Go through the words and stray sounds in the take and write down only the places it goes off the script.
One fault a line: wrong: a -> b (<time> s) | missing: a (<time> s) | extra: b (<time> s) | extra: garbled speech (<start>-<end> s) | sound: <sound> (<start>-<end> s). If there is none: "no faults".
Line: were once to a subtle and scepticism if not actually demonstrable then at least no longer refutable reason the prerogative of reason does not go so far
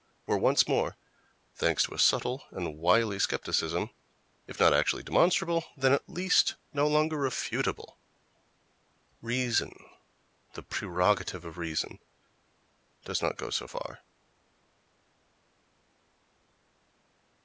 extra: more thanks (0.7 s)
extra: wily (2.8 s)